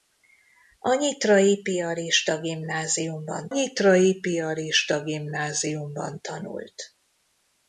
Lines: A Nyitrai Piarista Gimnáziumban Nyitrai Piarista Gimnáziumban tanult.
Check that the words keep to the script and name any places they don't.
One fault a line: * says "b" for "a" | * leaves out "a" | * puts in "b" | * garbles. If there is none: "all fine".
all fine